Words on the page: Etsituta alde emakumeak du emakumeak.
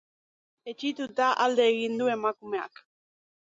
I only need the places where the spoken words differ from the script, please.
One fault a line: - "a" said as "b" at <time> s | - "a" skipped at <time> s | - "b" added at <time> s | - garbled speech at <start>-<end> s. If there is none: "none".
- "emakumeak" said as "egin" at 1.8 s